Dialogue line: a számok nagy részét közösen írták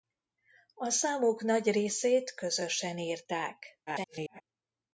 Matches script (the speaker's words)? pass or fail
fail